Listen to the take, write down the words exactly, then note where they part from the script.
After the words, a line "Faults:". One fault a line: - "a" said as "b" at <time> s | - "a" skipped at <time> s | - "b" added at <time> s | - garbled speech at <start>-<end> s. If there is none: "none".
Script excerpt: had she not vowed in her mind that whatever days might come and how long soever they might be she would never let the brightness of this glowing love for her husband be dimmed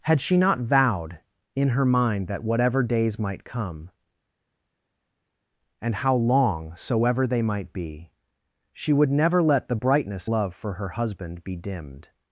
had she not vowed in her mind that whatever days might come and how long soever they might be she would never let the brightness love for her husband be dimmed
Faults:
- "of this glowing" skipped at 10.3 s